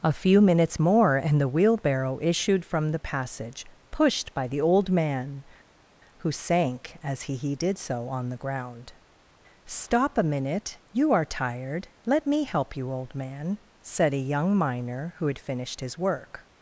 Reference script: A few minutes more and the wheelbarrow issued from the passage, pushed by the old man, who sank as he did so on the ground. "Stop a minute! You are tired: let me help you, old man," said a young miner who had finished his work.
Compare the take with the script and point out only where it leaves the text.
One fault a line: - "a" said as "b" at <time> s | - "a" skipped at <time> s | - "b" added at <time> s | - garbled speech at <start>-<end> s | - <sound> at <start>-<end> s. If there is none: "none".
- "he" added at 7.4 s